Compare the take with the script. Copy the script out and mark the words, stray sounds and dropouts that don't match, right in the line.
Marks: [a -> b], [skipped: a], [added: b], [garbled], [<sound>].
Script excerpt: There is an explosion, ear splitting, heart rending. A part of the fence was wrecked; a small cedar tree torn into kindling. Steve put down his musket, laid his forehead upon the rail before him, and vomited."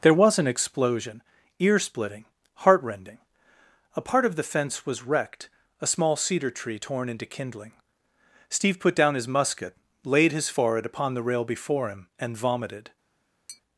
There [is -> was] an explosion, ear splitting, heart rending. A part of the fence was wrecked; a small cedar tree torn into kindling. Steve put down his musket, laid his forehead upon the rail before him, and vomited." [tap]